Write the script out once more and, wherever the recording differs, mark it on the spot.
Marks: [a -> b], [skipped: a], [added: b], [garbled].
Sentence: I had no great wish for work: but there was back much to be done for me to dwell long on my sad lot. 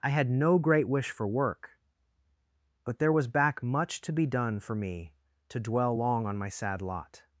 I had no great wish for work: but there was back much to be done for me to dwell long on my sad lot.